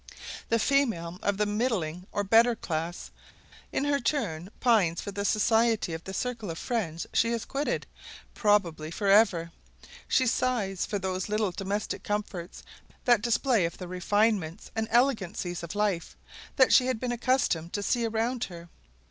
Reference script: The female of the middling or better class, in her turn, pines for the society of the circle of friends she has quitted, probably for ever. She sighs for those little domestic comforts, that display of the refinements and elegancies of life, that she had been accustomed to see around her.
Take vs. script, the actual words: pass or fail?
pass